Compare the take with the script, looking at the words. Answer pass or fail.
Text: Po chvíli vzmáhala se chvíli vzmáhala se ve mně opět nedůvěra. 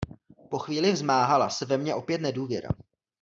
fail